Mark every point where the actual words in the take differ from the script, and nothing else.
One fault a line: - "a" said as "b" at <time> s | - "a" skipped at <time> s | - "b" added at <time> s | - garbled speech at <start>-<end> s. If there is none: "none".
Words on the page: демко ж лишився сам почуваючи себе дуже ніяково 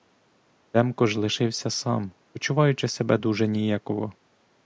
none